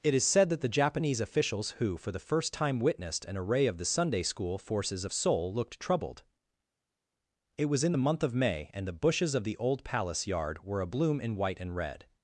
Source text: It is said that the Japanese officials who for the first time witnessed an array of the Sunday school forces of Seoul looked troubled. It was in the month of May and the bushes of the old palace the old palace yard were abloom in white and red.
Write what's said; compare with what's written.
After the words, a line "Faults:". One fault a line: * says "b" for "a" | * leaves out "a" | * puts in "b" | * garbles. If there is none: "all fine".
It is said that the Japanese officials who for the first time witnessed an array of the Sunday school forces of Seoul looked troubled. It was in the month of May and the bushes of the old palace yard were abloom in white and red.
Faults:
* leaves out "the old palace"